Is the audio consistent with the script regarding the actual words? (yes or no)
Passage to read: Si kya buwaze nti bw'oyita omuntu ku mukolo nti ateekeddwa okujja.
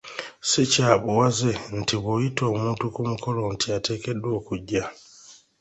yes